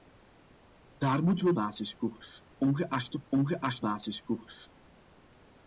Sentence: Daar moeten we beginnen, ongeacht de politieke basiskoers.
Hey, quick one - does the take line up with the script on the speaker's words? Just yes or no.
no